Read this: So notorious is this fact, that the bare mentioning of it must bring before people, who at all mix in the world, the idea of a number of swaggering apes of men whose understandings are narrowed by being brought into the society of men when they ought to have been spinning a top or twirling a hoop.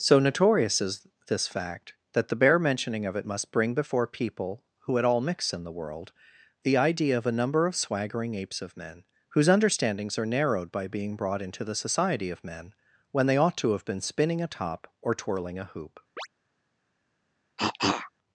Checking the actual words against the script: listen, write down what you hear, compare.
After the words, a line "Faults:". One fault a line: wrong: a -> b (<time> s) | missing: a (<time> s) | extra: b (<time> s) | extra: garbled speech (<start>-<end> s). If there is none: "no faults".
So notorious is this fact, that the bare mentioning of it must bring before people, who at all mix in the world, the idea of a number of swaggering apes of men whose understandings are narrowed by being brought into the society of men when they ought to have been spinning a top or twirling a hoop.
Faults:
no faults